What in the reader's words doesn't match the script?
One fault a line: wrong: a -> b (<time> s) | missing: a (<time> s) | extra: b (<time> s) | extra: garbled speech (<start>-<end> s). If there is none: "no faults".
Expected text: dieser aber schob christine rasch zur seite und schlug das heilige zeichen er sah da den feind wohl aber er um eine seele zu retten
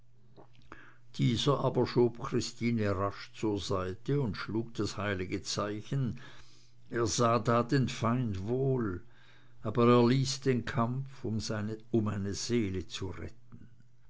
extra: ließ den kampf (10.1 s)